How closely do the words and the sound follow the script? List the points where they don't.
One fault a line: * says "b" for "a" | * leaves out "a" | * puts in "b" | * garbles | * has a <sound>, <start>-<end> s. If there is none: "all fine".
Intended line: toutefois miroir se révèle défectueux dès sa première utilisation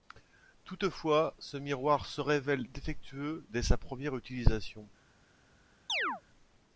* puts in "ce"
* has a chirp, 5.9-6.2 s